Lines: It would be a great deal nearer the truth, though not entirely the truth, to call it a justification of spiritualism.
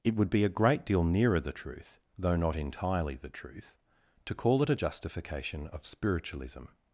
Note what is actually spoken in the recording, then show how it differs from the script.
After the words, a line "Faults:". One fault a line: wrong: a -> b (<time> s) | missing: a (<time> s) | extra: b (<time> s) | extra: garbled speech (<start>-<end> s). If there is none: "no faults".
It would be a great deal nearer the truth, though not entirely the truth, to call it a justification of spiritualism.
Faults:
no faults